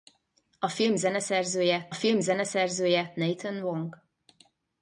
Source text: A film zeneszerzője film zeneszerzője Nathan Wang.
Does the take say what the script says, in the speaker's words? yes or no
yes